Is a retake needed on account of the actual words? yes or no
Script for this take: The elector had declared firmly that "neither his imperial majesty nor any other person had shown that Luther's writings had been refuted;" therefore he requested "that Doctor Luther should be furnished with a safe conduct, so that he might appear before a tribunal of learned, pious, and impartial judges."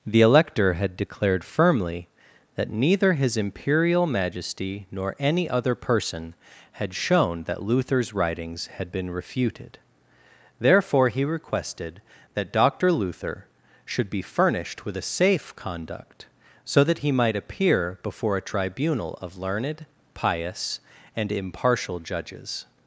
no